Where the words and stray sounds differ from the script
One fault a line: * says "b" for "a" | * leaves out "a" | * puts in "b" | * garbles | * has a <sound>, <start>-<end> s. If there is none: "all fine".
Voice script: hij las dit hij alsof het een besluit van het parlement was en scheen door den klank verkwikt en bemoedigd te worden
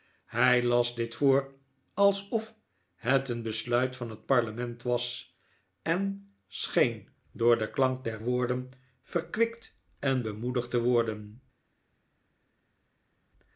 * says "voor" for "hij"
* puts in "der woorden"